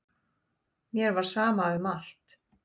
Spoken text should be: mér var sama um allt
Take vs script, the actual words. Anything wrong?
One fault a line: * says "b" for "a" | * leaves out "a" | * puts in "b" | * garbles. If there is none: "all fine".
all fine